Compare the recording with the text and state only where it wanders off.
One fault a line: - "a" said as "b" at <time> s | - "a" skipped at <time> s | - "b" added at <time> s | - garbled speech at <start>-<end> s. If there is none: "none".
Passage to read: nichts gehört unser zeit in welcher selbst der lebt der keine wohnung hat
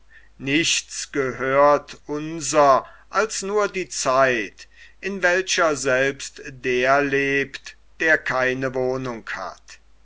- "als nur die" added at 3.1 s